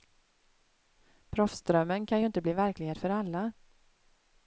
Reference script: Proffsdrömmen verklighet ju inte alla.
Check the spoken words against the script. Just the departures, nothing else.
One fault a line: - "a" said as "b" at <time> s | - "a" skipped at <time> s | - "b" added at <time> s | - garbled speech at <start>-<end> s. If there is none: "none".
- "verklighet" said as "kan" at 2.0 s
- "bli verklighet för" added at 2.4 s